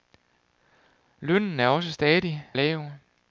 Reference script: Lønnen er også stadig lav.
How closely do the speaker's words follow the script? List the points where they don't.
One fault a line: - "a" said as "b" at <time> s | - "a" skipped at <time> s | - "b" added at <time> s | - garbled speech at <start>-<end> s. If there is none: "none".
none